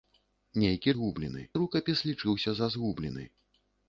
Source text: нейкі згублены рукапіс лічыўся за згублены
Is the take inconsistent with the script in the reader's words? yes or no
no